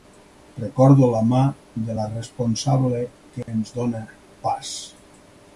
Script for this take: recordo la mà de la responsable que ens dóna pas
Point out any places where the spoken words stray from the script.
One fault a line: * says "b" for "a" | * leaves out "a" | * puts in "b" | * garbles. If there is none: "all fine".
all fine